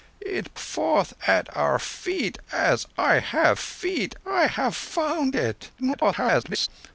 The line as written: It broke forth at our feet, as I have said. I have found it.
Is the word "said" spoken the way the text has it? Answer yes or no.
no